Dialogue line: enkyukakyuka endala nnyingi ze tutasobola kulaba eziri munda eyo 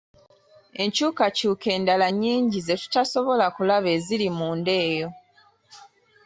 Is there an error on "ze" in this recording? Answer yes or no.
no